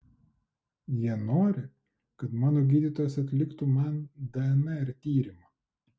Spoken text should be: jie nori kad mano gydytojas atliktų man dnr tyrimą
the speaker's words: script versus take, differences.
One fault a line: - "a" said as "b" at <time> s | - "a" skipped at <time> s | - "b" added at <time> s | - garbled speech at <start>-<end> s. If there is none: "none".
none